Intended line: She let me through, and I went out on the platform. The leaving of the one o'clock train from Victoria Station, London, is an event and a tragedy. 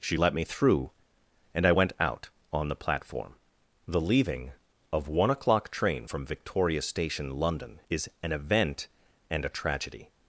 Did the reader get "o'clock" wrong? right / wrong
right